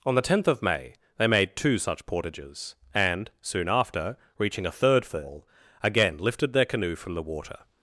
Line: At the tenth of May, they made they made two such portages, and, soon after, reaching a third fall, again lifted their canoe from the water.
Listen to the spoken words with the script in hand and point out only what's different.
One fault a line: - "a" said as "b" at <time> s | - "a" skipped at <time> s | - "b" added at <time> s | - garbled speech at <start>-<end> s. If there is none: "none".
- "At" said as "On" at 0.0 s
- "they made" skipped at 1.6 s